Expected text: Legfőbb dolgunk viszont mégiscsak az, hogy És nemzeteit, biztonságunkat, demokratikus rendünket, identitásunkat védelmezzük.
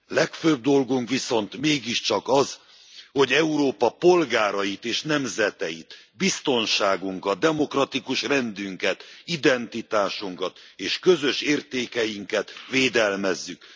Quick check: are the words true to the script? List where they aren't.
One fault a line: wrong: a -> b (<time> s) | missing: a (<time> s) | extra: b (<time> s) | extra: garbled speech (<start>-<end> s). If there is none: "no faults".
extra: Európa polgárait (3.3 s)
extra: és közös értékeinket (10.8 s)